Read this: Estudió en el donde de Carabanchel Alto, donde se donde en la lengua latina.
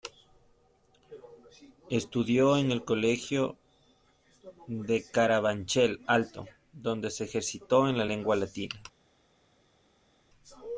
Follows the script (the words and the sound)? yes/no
no